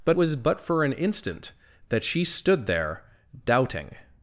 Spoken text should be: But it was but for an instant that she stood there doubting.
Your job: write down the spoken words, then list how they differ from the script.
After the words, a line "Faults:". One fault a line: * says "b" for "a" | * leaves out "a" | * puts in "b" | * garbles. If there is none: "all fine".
But was but for an instant that she stood there doubting.
Faults:
* leaves out "it"